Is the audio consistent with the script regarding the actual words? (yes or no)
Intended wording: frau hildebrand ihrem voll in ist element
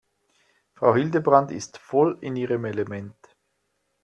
no